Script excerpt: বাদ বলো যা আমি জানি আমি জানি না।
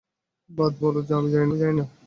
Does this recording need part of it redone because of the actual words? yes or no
no